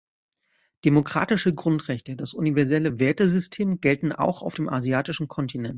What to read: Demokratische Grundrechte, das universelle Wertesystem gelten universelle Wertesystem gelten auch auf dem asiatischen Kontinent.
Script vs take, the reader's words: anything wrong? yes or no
yes